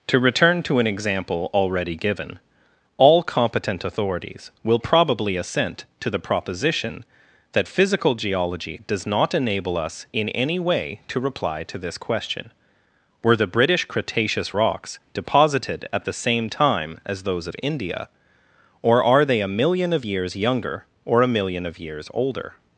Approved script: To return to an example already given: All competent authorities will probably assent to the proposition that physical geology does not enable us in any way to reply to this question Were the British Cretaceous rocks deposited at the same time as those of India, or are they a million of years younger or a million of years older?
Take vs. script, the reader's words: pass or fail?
pass